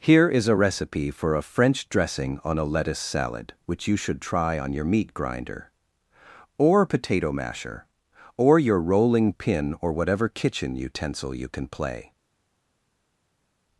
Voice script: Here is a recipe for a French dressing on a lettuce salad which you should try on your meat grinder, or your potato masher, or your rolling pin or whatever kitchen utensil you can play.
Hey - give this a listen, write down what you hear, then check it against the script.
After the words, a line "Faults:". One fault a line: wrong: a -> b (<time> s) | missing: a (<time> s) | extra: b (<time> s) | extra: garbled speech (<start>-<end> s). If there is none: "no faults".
Here is a recipe for a French dressing on a lettuce salad which you should try on your meat grinder, or potato masher, or your rolling pin or whatever kitchen utensil you can play.
Faults:
missing: your (6.9 s)